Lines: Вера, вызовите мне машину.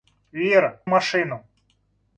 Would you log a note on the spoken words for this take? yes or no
yes